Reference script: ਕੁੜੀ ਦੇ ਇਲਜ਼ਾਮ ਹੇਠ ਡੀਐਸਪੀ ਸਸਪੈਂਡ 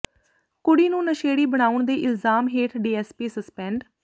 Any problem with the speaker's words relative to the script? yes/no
yes